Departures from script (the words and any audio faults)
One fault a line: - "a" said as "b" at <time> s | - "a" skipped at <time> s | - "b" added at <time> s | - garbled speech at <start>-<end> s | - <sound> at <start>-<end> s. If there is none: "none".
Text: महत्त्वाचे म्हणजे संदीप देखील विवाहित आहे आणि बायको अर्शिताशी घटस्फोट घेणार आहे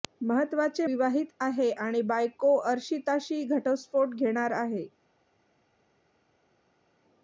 - "म्हणजे संदीप देखील" skipped at 0.8 s